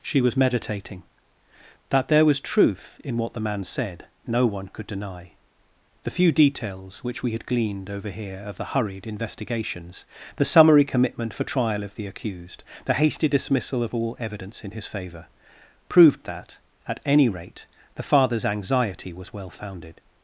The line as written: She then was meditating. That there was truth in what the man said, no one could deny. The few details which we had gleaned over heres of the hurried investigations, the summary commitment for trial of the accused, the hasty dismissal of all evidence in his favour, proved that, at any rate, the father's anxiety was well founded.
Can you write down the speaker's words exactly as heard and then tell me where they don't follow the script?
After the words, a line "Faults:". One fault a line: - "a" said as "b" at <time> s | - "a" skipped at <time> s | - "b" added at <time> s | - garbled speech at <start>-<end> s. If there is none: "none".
She was meditating. That there was truth in what the man said, no one could deny. The few details which we had gleaned over here of the hurried investigations, the summary commitment for trial of the accused, the hasty dismissal of all evidence in his favour, proved that, at any rate, the father's anxiety was well founded.
Faults:
- "then" skipped at 0.2 s
- "heres" said as "here" at 8.1 s